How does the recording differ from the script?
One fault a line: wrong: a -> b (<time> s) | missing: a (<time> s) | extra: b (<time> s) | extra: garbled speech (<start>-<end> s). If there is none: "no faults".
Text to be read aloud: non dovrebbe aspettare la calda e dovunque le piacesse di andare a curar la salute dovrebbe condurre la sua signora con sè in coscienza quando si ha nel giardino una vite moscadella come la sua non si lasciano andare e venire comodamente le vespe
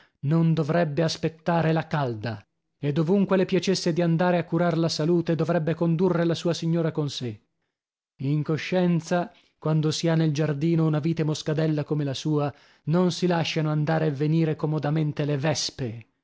no faults